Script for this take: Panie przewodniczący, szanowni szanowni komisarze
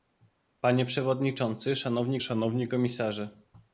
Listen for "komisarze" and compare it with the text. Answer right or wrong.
right